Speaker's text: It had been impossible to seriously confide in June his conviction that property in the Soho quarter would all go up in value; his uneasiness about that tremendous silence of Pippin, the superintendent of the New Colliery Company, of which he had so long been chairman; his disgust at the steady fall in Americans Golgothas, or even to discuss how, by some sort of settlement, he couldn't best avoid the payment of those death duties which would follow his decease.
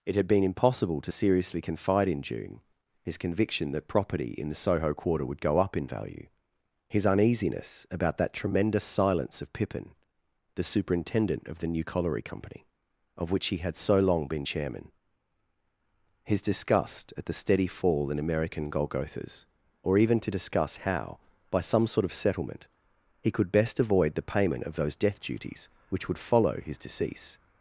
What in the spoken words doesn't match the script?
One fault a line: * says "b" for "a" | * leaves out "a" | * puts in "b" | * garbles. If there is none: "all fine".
* leaves out "all"
* says "American" for "Americans"
* says "could" for "couldn't"